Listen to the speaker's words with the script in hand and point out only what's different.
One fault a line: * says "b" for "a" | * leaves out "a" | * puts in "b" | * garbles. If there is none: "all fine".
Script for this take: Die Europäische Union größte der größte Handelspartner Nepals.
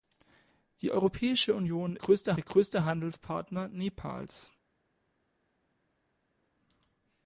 all fine